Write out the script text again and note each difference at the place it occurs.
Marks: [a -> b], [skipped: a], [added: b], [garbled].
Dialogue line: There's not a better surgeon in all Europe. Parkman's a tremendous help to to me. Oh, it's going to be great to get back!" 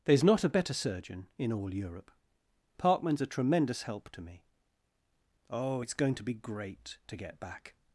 There's not a better surgeon in all Europe. Parkman's a tremendous help to [skipped: to] me. Oh, it's going to be great to get back!"